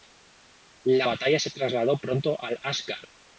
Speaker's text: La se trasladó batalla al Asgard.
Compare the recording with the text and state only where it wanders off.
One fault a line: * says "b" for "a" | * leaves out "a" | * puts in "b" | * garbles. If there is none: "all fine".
* puts in "batalla"
* says "pronto" for "batalla"